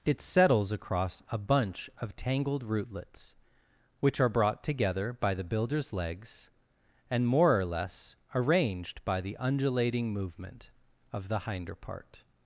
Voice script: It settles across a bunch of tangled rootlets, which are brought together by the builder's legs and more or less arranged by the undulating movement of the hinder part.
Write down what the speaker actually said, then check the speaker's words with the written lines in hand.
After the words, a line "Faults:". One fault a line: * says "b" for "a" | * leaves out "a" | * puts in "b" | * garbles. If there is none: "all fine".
It settles across a bunch of tangled rootlets, which are brought together by the builder's legs and more or less arranged by the undulating movement of the hinder part.
Faults:
all fine